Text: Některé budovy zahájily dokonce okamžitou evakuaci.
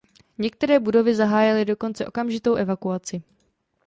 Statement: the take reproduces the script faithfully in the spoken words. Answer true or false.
true